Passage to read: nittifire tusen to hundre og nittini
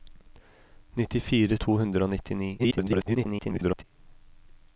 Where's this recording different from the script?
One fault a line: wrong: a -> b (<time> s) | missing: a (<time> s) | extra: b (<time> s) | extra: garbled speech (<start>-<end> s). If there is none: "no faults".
missing: tusen (1.6 s)
extra: garbled speech (2.6-3.8 s)